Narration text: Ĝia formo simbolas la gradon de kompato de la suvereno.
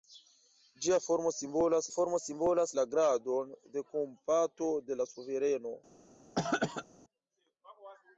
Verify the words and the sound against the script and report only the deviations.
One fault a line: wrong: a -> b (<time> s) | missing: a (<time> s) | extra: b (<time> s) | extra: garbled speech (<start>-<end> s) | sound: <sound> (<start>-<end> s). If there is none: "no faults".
extra: formo simbolas (2.0 s)
sound: throat clearing (6.4-6.9 s)